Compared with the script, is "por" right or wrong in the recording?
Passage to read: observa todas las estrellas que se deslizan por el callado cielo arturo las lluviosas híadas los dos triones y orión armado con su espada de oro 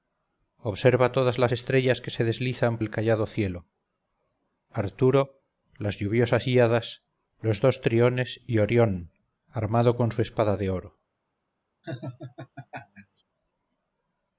wrong